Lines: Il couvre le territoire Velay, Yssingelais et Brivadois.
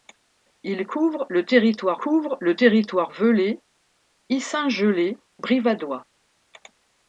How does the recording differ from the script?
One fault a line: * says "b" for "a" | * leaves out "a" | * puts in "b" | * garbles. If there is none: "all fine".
* puts in "couvre le territoire"
* leaves out "et"